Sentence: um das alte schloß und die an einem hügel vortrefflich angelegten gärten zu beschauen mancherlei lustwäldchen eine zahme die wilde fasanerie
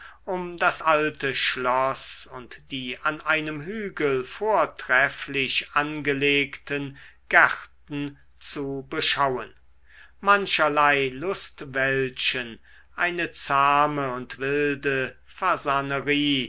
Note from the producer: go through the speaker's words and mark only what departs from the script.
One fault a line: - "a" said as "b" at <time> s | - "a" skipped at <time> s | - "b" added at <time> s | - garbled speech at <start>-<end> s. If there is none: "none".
- "die" said as "und" at 14.1 s